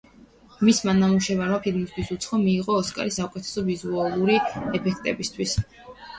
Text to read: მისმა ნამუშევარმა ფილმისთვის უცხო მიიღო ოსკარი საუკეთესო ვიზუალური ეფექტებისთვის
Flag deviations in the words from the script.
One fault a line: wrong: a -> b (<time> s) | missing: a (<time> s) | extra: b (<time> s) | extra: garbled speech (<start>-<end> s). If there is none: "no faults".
no faults